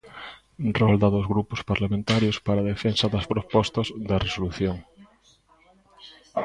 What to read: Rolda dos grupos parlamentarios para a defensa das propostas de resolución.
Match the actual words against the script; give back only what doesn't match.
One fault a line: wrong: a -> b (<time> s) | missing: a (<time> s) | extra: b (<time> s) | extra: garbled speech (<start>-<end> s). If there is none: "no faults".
no faults